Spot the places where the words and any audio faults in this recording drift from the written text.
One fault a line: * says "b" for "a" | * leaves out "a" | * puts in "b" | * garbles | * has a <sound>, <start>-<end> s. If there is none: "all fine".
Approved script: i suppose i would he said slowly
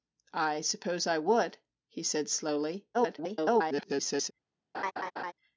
* garbles
* has a laugh, 4.7-5.3 s